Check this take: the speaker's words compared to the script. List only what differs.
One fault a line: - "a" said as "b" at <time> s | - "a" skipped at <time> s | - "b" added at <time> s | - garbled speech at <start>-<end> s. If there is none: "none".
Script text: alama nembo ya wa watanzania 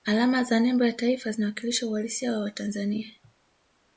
- "za" added at 0.4 s
- "taifa zinawakilisha uhalisia" added at 0.9 s